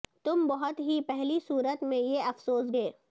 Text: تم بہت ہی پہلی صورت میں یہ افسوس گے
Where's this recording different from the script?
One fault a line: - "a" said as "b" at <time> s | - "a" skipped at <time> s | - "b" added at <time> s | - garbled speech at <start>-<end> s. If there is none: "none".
none